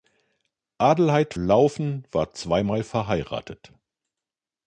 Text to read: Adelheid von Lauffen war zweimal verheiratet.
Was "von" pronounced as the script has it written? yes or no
no